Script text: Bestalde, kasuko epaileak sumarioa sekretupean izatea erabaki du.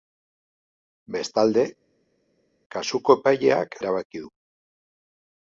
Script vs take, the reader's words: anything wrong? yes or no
yes